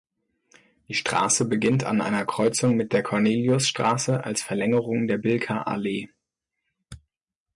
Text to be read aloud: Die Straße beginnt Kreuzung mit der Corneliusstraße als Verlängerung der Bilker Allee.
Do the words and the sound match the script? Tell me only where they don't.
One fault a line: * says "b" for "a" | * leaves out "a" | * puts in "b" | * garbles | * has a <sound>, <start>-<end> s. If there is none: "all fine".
* puts in "an einer"